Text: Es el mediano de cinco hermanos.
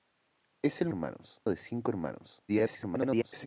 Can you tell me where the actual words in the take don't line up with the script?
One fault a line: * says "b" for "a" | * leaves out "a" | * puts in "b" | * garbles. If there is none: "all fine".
* says "hermanos" for "mediano"
* garbles